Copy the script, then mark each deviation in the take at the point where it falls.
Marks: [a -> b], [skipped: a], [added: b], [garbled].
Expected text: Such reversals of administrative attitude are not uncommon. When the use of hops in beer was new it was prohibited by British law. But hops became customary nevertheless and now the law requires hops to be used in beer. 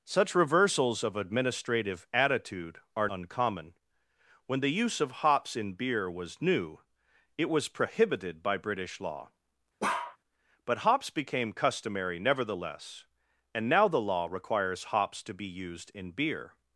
Such reversals of administrative attitude are [skipped: not] uncommon. When the use of hops in beer was new it was prohibited by British law. But hops became customary nevertheless and now the law requires hops to be used in beer.